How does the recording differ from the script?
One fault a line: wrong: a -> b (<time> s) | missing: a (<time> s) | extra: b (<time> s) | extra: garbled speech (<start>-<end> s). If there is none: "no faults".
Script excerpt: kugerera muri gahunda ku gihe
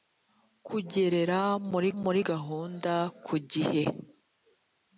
extra: muri (2.0 s)